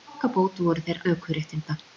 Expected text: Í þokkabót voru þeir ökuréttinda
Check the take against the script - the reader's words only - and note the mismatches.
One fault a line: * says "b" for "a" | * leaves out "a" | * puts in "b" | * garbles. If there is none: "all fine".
all fine